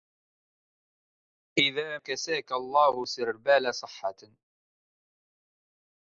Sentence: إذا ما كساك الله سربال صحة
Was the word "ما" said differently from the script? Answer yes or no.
yes